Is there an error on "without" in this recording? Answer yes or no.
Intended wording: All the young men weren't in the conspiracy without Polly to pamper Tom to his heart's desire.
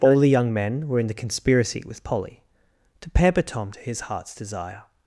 yes